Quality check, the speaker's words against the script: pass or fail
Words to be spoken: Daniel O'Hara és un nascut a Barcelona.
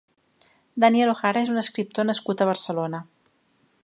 fail